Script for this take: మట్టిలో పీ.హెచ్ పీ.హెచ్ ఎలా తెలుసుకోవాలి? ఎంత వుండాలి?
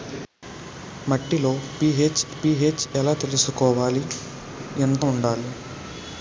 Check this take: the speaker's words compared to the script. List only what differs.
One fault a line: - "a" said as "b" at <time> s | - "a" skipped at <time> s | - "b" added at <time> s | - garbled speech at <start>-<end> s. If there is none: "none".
none